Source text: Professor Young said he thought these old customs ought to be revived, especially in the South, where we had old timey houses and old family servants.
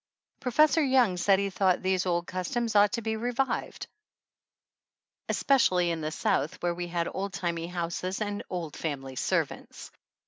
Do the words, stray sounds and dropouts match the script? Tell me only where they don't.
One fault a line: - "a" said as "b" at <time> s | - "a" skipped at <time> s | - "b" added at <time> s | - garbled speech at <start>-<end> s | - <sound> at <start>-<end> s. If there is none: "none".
none